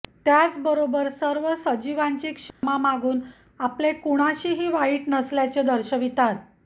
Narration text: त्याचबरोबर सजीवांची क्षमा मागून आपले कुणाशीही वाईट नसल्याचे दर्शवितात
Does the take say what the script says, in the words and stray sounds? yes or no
no